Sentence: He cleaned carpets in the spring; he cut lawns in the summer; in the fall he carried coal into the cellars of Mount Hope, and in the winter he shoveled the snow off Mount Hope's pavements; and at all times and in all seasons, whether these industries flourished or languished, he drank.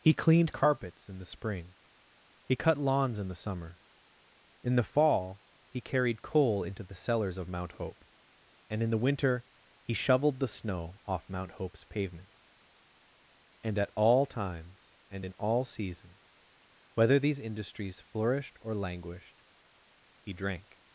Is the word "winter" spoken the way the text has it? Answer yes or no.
yes